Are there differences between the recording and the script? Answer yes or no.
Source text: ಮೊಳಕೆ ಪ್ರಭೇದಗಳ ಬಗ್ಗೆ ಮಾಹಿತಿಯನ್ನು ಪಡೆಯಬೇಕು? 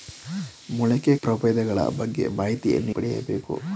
no